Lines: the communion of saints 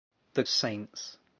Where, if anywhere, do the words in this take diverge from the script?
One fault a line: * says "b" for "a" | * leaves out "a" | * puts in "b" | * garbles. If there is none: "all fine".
* leaves out "communion of"